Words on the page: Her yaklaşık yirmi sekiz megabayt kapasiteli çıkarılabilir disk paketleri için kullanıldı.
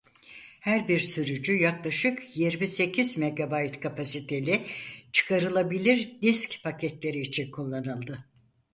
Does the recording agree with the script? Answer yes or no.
no